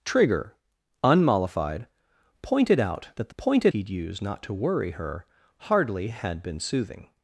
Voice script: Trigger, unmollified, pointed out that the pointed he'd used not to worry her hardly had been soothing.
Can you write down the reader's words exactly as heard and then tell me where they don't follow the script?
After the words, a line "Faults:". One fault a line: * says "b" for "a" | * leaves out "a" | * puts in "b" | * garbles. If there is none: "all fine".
Trigger, unmollified, pointed out that the pointed he'd used not to worry her hardly had been soothing.
Faults:
all fine